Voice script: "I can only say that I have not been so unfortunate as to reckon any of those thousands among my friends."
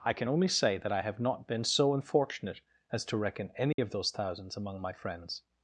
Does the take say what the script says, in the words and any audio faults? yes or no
no